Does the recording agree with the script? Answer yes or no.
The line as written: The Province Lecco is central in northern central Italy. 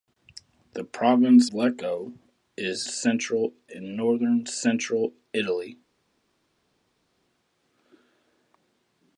yes